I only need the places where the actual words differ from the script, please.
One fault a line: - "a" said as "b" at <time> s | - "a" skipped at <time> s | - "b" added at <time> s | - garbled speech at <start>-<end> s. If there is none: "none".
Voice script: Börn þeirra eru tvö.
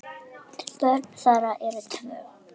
none